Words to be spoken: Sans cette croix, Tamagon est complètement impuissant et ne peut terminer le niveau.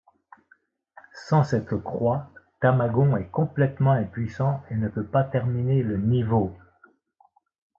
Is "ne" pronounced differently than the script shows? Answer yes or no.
no